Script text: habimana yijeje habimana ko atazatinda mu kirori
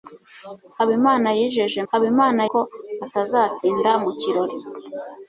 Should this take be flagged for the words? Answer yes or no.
no